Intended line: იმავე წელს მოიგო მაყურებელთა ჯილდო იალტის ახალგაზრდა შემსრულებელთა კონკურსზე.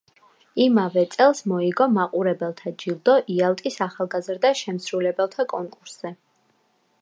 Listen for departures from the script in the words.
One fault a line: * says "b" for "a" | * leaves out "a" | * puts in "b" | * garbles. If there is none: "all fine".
all fine